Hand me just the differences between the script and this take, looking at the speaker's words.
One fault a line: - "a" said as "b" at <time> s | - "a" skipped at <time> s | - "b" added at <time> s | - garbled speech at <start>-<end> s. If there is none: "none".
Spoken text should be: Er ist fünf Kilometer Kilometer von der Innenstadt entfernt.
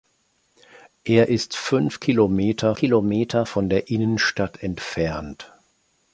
none